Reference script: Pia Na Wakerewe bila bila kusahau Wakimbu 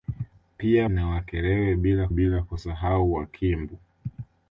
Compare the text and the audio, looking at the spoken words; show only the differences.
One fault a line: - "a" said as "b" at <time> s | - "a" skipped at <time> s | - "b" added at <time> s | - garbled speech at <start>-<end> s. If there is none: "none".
none